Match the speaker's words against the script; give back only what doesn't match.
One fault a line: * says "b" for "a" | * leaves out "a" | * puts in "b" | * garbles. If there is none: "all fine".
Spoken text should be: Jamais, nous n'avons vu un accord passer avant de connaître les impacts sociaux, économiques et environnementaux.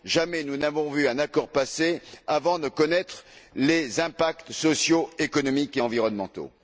all fine